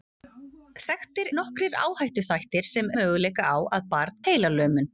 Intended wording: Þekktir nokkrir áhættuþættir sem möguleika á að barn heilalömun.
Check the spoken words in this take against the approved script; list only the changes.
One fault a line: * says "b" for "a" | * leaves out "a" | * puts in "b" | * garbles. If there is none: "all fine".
all fine